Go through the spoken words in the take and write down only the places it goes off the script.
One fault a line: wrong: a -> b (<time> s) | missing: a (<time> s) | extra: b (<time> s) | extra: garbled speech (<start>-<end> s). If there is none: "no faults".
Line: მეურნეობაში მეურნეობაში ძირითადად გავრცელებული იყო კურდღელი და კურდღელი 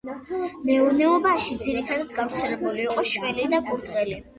missing: მეურნეობაში (1.6 s)
wrong: კურდღელი -> შველი (3.2 s)